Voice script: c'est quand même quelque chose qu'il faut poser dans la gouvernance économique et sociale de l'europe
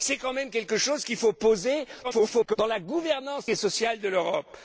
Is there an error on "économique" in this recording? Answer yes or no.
yes